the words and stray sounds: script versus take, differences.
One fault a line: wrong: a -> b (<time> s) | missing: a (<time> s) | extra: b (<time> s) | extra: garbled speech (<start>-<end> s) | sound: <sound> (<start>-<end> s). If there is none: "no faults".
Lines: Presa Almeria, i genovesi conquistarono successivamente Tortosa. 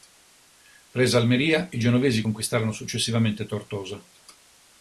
no faults